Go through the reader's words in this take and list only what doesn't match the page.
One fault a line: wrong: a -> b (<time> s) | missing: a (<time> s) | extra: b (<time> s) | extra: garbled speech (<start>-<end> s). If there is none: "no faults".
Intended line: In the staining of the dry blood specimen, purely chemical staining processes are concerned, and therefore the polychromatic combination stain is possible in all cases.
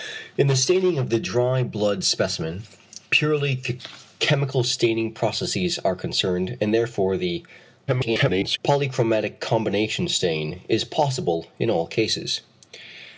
extra: garbled speech (7.9-8.6 s)